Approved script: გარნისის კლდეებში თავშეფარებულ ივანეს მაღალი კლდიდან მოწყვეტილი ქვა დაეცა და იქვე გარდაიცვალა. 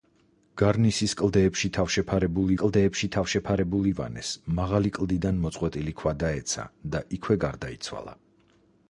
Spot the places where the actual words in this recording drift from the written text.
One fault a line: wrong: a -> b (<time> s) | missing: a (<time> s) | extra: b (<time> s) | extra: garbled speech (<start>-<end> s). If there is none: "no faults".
extra: კლდეებში თავშეფარებულ (2.6 s)